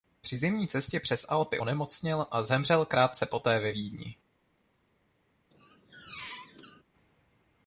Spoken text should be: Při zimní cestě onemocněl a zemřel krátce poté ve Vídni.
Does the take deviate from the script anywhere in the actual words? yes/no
yes